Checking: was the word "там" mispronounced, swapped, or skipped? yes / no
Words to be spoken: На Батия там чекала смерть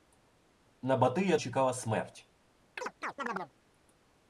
yes